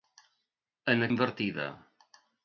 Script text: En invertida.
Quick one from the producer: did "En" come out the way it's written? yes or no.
yes